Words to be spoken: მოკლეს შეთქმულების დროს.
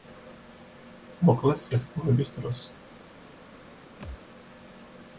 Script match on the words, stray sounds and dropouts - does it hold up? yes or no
no